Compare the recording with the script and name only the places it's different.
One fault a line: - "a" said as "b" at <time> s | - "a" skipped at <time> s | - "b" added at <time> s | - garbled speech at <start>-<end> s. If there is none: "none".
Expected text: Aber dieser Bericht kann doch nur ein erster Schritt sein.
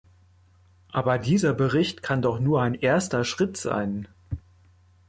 none